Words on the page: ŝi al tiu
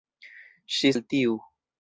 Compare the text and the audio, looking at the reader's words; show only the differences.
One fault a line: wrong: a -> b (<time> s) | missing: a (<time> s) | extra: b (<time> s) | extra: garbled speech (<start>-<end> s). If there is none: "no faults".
no faults